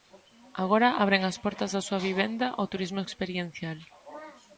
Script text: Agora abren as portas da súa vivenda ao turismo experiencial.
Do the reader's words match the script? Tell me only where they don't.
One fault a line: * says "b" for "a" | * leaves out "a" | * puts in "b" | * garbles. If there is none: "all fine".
all fine